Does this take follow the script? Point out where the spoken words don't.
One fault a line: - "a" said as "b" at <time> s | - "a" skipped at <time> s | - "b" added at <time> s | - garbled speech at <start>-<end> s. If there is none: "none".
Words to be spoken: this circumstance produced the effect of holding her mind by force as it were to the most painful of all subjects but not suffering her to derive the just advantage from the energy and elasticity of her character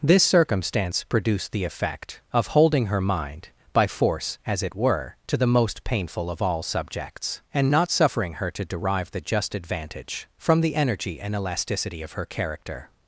- "but" said as "and" at 7.5 s